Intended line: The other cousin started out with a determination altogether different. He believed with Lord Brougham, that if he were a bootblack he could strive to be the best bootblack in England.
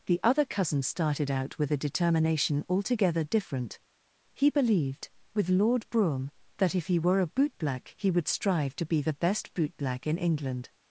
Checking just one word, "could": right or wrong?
wrong